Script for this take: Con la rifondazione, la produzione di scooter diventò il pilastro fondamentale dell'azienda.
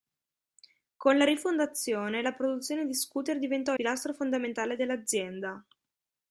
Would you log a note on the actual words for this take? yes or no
yes